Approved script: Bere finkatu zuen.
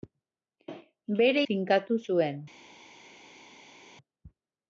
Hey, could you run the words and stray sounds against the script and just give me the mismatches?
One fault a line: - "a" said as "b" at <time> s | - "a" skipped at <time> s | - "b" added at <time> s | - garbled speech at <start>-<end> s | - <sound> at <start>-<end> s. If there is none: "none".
none